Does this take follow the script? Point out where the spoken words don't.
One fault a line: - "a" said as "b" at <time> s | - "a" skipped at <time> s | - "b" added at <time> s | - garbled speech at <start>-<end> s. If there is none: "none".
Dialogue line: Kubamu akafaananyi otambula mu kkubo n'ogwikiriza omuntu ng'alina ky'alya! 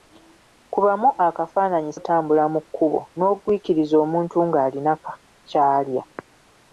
none